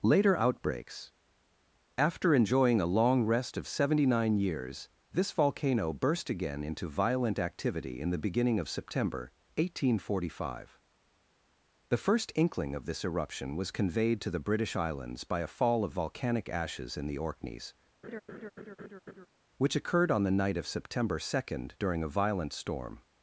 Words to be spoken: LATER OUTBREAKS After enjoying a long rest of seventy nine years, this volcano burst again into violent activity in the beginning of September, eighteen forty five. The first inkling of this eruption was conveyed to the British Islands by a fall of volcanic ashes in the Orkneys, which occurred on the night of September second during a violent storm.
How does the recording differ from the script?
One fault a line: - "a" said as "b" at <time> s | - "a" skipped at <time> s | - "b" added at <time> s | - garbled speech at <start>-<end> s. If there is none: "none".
none